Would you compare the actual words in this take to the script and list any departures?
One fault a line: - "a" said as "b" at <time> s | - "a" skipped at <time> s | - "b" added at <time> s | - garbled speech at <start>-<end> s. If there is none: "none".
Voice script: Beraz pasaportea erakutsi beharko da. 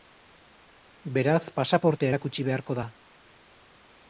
none